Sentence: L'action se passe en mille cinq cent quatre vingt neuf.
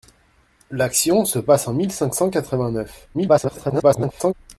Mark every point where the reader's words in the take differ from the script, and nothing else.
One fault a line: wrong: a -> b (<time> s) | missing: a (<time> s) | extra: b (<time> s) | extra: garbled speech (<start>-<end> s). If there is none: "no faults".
extra: garbled speech (3.1-4.3 s)